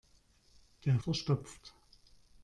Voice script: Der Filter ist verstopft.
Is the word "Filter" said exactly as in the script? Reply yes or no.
no